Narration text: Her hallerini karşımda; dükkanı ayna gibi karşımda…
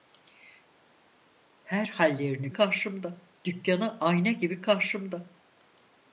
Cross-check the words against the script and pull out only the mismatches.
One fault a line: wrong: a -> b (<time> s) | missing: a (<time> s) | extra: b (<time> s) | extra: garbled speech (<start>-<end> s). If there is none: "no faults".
no faults